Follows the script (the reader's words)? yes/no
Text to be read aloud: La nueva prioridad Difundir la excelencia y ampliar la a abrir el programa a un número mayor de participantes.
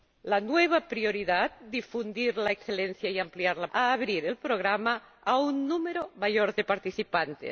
yes